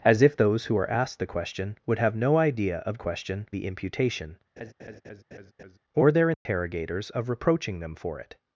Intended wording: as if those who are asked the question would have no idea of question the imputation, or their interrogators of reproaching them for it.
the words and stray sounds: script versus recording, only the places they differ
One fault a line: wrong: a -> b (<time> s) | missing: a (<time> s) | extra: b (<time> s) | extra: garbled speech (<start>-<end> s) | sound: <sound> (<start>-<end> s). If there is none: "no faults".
sound: laugh (4.6-5.8 s)
sound: dropout (6.3-6.5 s)